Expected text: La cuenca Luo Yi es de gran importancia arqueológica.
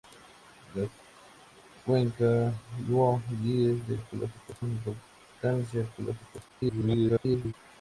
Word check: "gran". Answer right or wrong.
wrong